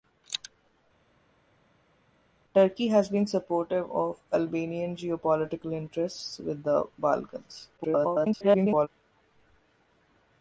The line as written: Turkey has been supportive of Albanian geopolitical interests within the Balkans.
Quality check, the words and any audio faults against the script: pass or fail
fail